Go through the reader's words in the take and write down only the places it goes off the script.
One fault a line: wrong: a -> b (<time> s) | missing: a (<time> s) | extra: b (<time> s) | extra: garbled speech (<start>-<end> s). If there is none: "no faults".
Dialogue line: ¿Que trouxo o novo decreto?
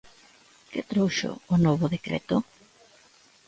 no faults